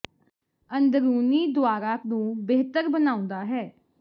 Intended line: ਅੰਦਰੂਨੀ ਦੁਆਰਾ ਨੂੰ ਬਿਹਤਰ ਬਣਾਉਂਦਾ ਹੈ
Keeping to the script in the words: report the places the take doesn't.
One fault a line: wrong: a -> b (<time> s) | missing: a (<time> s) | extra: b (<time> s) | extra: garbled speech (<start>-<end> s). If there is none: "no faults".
no faults